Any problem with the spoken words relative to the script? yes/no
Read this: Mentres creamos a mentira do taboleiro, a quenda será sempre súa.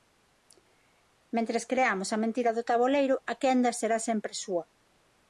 no